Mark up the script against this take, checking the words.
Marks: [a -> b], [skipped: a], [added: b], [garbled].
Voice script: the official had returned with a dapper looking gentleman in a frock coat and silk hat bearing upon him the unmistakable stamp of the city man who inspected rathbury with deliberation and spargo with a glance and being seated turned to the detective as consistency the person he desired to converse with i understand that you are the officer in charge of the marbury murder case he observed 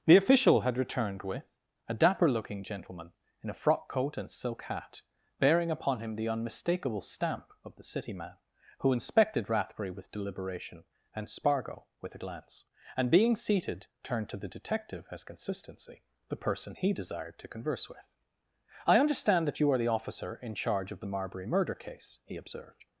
the official had returned with a dapper looking gentleman in a frock coat and silk hat bearing upon him the unmistakable stamp of the city man who inspected rathbury with deliberation and spargo with a glance and being seated turned to the detective as consistency the person he desired to converse with i understand that you are the officer in charge of the marbury murder case he observed